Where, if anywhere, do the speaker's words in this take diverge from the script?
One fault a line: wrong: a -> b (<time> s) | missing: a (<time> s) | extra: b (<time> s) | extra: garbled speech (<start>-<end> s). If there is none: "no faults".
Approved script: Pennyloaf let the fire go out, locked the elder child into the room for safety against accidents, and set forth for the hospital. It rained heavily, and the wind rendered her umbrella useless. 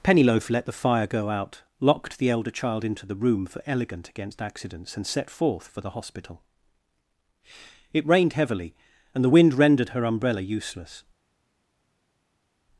wrong: safety -> elegant (3.7 s)